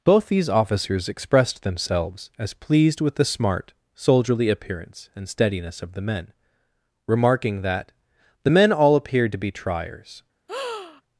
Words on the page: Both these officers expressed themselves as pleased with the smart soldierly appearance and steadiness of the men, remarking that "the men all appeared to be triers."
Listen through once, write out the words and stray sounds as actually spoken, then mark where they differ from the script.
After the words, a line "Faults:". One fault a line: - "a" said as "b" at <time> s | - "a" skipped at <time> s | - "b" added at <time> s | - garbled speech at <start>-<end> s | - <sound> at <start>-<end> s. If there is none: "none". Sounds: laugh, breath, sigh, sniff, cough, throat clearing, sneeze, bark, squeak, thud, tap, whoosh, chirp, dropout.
Both these officers expressed themselves as pleased with the smart soldierly appearance and steadiness of the men, remarking that "the men all appeared to be triers."
Faults:
- breath at 10.5-11.0 s